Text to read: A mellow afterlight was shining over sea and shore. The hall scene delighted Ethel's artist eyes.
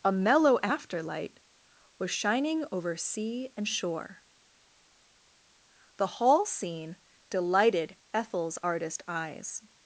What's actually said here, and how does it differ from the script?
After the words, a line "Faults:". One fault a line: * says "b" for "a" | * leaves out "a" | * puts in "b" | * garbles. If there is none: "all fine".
A mellow afterlight was shining over sea and shore. The hall scene delighted Ethel's artist eyes.
Faults:
all fine